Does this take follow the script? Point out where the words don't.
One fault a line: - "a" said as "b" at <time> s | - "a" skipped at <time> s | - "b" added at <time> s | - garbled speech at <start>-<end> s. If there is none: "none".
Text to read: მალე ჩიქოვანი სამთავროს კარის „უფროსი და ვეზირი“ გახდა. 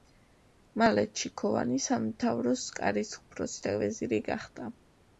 none